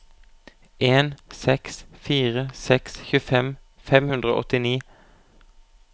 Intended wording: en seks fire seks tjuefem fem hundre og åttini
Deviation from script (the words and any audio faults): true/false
false